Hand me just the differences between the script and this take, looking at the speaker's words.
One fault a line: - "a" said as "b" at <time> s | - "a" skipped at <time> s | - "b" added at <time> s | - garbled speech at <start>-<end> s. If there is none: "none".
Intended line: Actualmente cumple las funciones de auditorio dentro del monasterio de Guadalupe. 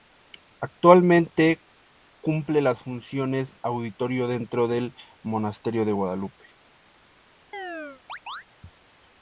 - "de" skipped at 3.6 s